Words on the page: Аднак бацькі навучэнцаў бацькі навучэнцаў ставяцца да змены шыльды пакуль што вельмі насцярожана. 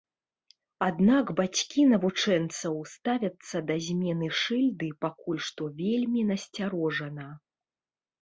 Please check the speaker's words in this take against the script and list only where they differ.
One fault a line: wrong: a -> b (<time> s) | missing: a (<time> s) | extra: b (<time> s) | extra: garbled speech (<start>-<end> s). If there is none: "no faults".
missing: бацькі навучэнцаў (2.8 s)